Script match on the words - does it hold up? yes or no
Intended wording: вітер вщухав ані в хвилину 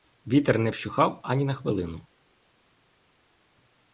no